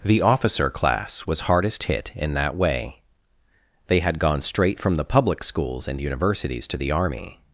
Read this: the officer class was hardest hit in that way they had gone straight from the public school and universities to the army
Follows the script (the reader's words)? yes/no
no